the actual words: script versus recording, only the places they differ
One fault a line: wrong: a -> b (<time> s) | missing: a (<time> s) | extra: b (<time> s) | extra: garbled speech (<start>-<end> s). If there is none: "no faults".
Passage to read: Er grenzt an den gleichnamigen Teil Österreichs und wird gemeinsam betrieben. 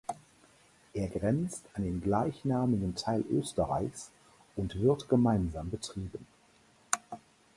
no faults